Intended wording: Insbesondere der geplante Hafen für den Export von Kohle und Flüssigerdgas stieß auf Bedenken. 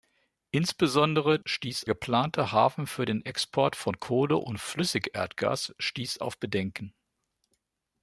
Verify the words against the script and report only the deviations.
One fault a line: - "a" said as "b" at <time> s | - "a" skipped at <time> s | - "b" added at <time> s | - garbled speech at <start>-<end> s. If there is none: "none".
- "der" said as "stieß" at 1.4 s